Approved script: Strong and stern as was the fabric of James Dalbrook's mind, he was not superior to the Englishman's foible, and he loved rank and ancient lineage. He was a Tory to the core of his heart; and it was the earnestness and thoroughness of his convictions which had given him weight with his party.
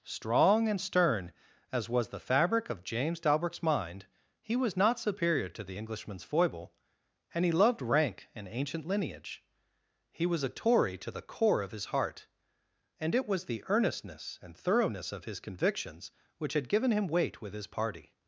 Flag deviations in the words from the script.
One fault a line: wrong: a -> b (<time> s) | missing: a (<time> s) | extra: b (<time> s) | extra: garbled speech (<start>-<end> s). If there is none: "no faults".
no faults